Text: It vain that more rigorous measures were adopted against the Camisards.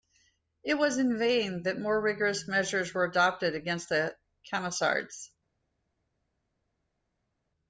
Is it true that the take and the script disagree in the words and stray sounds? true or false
true